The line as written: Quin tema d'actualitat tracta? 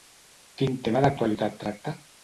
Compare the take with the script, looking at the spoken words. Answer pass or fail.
pass